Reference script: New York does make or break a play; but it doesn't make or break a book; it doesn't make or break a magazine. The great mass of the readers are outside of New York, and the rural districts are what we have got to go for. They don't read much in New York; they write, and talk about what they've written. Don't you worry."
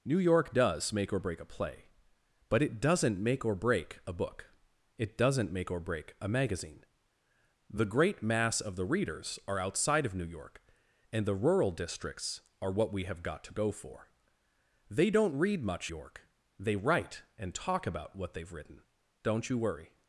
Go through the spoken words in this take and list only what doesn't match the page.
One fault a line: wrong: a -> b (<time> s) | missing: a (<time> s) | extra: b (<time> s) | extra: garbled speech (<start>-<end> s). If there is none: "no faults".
missing: in New (15.9 s)